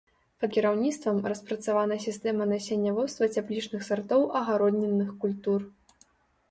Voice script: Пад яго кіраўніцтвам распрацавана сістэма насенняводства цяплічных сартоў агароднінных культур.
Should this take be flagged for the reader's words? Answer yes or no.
yes